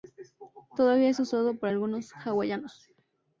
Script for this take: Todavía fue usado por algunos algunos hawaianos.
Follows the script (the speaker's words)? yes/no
no